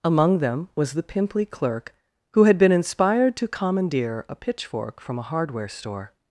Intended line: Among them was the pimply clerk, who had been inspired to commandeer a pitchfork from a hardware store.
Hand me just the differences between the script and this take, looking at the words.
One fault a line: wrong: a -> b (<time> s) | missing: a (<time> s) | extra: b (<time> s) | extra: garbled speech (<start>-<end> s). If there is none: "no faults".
no faults